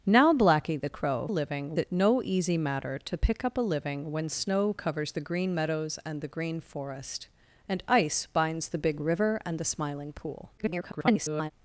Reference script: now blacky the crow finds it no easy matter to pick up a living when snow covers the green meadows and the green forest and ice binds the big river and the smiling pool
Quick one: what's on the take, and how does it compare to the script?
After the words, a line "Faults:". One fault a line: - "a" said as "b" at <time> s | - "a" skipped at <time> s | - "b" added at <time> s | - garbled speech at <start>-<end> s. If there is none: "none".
now blacky the crow living it no easy matter to pick up a living when snow covers the green meadows and the green forest and ice binds the big river and the smiling pool [garbled]
Faults:
- "finds" said as "living" at 1.3 s
- garbled speech at 10.6-11.5 s